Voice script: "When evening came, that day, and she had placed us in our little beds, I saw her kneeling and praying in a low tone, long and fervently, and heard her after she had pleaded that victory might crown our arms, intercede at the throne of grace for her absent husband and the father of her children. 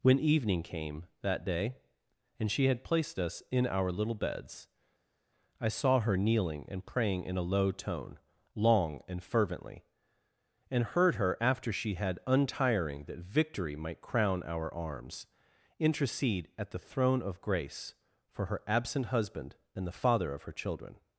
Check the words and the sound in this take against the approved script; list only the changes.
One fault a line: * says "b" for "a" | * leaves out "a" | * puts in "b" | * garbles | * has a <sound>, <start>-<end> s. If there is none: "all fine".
* says "untiring" for "pleaded"